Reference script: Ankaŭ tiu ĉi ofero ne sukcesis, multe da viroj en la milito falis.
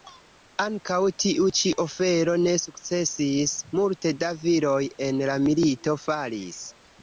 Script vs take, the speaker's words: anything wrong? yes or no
no